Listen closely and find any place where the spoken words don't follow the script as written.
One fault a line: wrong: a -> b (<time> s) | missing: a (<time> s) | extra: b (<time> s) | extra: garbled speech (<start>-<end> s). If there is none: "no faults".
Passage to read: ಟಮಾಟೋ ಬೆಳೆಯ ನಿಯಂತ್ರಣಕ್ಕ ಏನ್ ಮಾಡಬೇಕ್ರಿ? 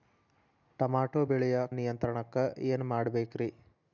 no faults